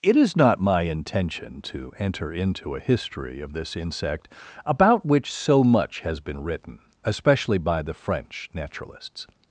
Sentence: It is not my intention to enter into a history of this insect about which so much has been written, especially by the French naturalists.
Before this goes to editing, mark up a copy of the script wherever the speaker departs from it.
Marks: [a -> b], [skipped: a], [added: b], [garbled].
It is not my intention to enter into a history of this insect about which so much has been written, especially by the French naturalists.